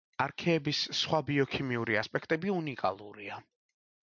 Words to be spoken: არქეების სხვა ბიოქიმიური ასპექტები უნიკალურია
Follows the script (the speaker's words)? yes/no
yes